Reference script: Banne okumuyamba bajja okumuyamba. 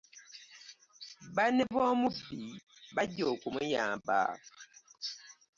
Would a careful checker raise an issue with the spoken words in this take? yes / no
yes